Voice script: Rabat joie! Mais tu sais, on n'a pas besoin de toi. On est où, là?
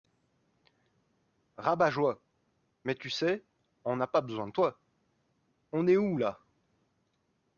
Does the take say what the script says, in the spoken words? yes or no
yes